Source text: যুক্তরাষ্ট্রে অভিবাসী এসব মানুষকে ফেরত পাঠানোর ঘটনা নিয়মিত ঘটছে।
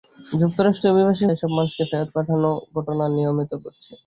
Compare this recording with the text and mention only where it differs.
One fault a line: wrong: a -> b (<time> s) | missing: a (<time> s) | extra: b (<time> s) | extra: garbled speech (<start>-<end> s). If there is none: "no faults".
no faults